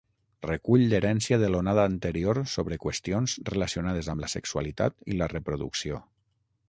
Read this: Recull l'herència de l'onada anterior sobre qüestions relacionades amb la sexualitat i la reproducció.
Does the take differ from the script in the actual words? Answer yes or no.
no